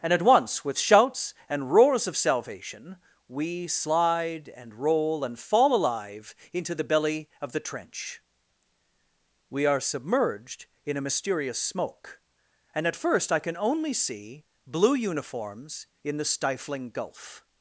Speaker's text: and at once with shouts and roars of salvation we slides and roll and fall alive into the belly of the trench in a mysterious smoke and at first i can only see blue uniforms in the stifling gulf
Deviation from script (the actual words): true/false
true